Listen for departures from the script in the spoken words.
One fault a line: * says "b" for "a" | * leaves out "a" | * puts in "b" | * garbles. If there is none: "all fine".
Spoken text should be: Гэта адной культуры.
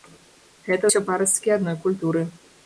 * puts in "ўсё парасткі"